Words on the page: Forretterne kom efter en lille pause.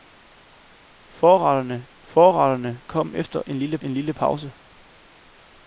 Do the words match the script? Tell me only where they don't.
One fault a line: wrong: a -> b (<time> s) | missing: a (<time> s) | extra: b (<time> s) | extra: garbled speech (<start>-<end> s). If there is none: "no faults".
extra: forretterne (2.0 s)
extra: en lille (3.8 s)